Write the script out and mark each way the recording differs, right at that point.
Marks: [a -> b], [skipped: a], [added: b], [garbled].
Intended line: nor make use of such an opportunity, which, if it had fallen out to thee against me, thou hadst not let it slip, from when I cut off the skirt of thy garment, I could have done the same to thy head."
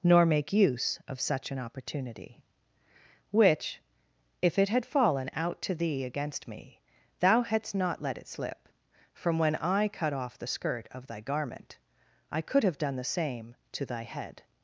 nor make use of such an opportunity, which, if it had fallen out to thee against me, thou hadst not let it slip, from when I cut off the skirt of thy garment, I could have done the same to thy head."